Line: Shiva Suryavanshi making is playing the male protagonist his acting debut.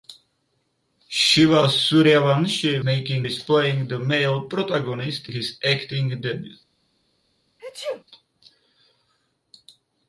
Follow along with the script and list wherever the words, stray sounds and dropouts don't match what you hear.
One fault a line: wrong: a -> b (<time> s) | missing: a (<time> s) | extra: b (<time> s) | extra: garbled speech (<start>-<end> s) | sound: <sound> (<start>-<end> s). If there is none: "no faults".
sound: sneeze (7.6-8.0 s)